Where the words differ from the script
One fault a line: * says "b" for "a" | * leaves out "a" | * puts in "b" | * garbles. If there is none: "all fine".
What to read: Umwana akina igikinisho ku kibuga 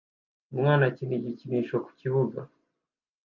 all fine